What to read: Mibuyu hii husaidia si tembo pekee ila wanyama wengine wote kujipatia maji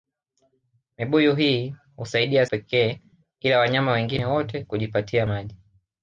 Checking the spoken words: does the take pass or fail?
fail